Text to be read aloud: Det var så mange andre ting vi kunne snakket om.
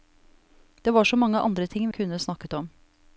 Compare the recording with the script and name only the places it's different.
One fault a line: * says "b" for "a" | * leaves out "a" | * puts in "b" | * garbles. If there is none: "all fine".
* leaves out "vi"